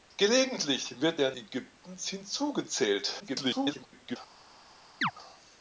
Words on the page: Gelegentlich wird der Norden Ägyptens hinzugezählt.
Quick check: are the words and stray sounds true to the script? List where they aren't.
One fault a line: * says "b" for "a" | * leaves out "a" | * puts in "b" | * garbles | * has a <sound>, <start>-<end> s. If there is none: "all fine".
* leaves out "Norden"
* garbles
* has a chirp, 5.0-5.1 s